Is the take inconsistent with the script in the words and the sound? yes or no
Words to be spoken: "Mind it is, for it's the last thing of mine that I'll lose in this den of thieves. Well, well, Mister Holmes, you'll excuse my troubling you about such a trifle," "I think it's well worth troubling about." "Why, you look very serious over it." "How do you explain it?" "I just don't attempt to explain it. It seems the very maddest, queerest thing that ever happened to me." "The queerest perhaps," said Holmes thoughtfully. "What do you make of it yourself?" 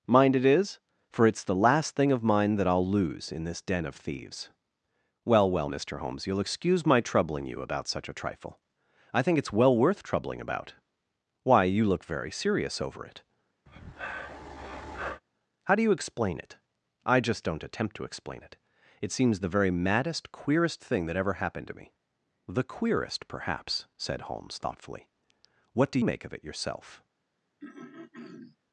yes